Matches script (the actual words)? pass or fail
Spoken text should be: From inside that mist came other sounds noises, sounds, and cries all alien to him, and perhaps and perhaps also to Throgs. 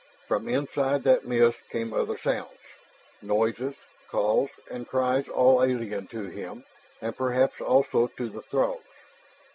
fail